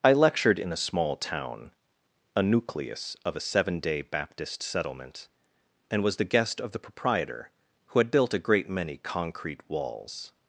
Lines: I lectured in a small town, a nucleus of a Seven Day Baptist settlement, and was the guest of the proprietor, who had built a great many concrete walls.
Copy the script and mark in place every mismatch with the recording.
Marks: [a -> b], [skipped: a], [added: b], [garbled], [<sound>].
I lectured in a small town, a nucleus of a Seven Day Baptist settlement, and was the guest of the proprietor, who had built a great many concrete walls.